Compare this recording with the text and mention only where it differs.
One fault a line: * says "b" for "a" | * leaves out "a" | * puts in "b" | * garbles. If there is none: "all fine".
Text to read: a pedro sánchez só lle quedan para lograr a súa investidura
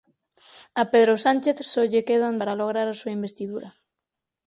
all fine